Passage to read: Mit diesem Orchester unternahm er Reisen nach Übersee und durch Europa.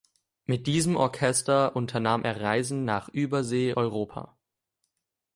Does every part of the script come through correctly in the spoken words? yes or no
no